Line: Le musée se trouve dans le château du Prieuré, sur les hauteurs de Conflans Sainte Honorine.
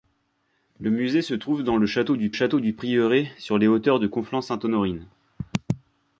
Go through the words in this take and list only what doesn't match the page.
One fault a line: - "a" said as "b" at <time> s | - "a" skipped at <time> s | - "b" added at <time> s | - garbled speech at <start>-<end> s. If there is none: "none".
- "château du" added at 2.3 s